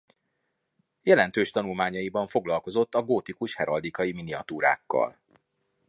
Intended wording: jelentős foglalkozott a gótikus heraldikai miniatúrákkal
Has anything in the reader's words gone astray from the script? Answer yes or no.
yes